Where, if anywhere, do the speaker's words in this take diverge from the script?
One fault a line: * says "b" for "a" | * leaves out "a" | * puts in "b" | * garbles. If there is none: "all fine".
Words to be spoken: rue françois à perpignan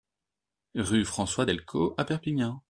* puts in "delcos"